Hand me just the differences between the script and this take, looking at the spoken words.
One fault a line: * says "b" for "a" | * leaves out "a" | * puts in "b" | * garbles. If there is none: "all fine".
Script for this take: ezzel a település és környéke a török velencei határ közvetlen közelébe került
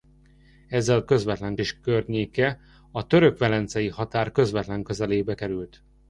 * says "közvetlen" for "település"